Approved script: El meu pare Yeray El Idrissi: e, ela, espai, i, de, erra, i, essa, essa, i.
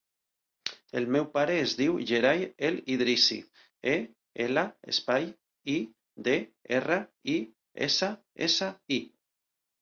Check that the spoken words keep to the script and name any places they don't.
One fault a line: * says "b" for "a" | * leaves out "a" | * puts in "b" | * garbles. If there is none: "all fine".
* puts in "es diu"